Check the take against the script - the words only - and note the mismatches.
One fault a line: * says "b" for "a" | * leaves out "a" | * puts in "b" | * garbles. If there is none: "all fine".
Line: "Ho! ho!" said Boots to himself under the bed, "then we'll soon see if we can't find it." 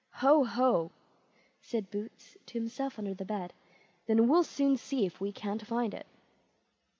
all fine